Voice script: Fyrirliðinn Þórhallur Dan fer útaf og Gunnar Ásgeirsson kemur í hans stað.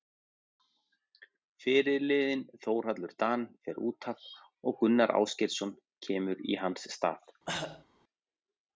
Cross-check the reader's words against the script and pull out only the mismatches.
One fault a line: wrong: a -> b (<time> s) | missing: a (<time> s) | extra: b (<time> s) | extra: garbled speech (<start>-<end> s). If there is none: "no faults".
no faults